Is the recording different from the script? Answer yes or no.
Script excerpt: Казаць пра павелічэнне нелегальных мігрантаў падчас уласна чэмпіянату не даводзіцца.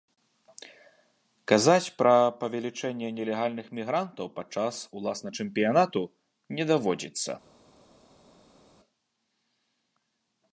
no